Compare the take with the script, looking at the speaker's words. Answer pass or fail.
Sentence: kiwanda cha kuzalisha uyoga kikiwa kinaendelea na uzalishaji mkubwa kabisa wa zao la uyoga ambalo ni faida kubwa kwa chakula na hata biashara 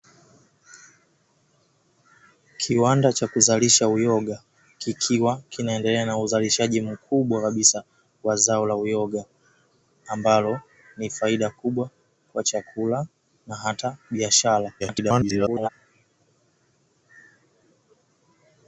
fail